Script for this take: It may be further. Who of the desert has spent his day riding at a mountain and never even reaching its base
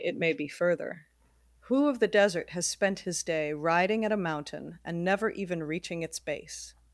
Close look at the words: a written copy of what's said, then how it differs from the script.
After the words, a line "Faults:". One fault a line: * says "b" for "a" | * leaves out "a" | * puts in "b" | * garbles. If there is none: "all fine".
It may be further. Who of the desert has spent his day riding at a mountain and never even reaching its base
Faults:
all fine